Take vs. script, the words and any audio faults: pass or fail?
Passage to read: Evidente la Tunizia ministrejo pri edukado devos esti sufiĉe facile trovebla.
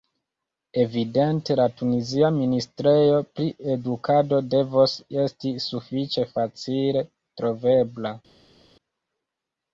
pass